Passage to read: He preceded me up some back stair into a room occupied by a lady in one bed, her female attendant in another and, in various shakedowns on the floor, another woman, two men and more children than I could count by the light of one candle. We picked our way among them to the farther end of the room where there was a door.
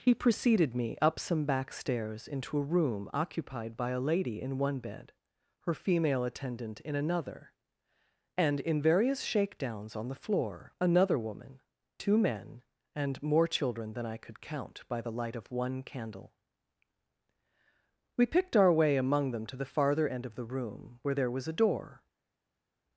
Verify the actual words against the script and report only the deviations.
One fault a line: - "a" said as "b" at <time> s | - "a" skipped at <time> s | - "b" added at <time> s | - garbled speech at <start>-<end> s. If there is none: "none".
- "stair" said as "stairs" at 1.7 s